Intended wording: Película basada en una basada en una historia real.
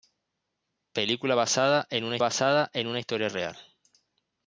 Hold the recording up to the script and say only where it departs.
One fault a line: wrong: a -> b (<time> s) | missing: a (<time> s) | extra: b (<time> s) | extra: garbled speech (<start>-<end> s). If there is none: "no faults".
no faults